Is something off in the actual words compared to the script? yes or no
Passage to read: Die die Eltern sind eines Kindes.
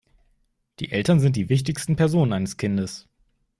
yes